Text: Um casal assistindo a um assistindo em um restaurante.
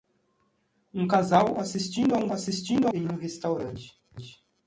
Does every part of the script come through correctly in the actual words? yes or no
yes